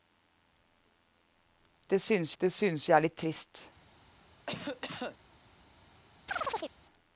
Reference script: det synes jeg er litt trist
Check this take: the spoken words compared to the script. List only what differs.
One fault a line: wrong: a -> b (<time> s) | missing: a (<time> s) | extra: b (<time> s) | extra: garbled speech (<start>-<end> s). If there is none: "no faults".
extra: det synes (2.4 s)